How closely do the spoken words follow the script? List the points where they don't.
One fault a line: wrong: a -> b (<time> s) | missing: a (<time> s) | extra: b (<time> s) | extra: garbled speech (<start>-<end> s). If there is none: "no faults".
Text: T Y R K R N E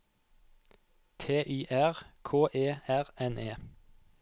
extra: E (2.5 s)